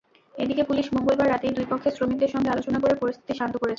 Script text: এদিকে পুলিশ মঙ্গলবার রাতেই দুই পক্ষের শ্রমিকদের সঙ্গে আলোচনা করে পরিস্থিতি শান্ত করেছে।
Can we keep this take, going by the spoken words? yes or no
yes